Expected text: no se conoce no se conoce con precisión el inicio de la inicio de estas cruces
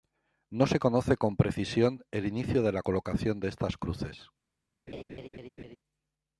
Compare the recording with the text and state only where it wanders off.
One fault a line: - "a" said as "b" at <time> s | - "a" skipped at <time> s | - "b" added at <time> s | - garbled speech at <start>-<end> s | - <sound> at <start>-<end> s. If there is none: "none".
- "no se conoce" skipped at 1.1 s
- "inicio" said as "colocación" at 2.8 s
- laugh at 4.9-5.8 s